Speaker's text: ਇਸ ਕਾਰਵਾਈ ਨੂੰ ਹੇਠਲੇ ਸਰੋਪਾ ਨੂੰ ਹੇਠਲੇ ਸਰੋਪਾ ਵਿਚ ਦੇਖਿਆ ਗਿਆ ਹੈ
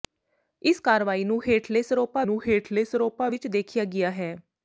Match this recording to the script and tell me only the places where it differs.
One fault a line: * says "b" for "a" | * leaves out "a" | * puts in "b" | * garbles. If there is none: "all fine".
all fine